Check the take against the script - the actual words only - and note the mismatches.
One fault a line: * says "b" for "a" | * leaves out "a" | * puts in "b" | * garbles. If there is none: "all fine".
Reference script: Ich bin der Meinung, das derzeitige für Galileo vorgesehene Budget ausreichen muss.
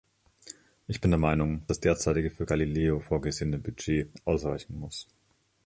all fine